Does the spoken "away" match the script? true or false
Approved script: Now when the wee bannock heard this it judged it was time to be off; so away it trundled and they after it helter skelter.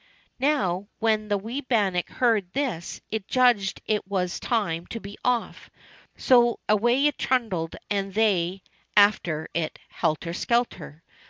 true